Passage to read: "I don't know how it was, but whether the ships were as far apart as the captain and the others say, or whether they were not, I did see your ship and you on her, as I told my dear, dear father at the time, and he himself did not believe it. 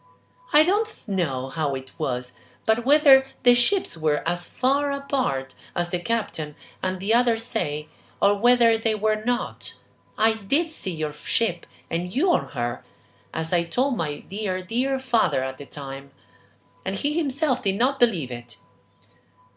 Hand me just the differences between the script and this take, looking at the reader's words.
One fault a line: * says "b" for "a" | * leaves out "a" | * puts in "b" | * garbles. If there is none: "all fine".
all fine